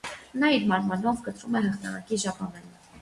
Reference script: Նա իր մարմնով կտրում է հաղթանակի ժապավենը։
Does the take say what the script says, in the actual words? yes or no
yes